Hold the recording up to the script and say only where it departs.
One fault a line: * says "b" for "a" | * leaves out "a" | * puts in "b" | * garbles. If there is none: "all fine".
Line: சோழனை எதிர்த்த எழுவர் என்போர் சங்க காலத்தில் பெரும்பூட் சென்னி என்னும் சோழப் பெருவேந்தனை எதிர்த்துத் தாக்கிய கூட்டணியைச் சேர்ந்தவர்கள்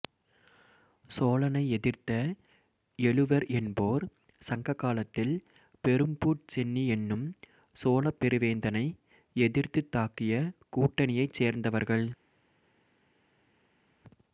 all fine